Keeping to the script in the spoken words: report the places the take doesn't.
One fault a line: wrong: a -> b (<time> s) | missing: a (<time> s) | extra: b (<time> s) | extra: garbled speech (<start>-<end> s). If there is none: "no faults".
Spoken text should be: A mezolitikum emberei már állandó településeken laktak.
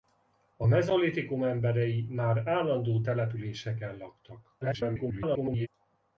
extra: garbled speech (4.6-5.7 s)